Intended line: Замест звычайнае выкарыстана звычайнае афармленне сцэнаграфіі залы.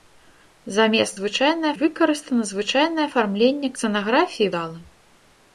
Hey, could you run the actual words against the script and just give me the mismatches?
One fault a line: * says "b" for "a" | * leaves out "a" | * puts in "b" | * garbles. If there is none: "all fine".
all fine